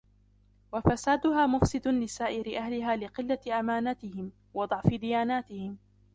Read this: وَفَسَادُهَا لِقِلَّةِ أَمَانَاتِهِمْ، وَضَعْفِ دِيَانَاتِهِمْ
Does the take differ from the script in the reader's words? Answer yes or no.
yes